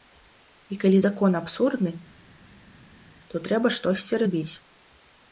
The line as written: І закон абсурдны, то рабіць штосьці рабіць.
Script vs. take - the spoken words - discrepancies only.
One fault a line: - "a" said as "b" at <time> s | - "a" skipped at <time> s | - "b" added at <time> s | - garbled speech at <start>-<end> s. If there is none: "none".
- "калі" added at 0.8 s
- "рабіць" said as "трэба" at 3.5 s